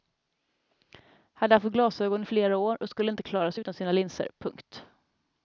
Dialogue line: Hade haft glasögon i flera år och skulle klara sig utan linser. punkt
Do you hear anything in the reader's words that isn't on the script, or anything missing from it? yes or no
yes